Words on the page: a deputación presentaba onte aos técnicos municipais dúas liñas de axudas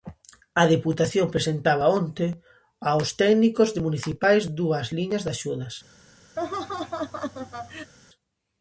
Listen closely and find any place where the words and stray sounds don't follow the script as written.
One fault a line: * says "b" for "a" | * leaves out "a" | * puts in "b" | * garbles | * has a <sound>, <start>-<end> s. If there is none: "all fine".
* has a laugh, 6.4-7.9 s